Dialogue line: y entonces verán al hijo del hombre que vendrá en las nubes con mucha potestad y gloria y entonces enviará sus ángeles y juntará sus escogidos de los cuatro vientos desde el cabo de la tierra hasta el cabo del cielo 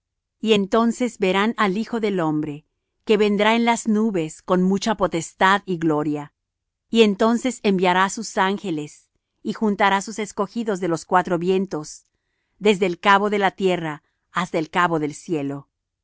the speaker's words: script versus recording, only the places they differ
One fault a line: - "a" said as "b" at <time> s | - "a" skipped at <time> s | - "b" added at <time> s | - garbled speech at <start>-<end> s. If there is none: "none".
none